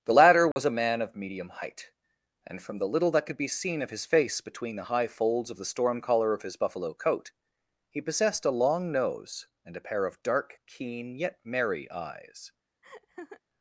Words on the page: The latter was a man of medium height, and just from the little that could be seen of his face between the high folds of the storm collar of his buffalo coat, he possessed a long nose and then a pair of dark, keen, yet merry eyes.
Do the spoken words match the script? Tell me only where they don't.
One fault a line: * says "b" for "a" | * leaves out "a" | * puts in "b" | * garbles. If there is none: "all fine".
* leaves out "just"
* leaves out "then"